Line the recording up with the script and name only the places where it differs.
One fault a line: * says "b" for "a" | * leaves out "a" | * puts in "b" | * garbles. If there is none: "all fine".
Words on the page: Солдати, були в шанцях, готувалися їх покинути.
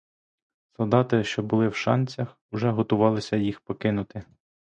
* puts in "що"
* puts in "уже"